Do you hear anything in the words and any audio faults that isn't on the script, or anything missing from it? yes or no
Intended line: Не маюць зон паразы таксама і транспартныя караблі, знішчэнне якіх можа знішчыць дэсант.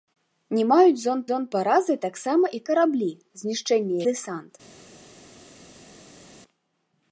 yes